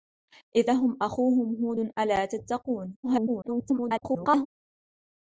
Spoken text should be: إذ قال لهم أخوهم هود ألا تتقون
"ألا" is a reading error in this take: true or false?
false